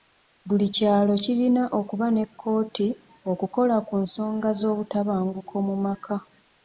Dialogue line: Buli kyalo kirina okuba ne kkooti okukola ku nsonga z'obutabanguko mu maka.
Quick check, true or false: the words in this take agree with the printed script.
true